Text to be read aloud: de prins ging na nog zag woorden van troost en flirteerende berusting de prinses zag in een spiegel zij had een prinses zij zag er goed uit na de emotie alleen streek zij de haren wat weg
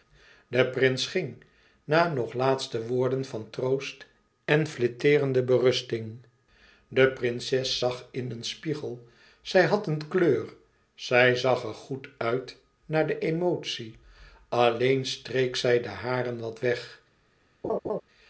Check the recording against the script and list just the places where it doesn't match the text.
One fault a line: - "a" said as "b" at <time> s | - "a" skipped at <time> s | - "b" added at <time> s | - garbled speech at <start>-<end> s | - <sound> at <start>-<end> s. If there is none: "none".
- "zag" said as "laatste" at 2.3 s
- "prinses" said as "kleur" at 10.1 s
- laugh at 17.6-18.0 s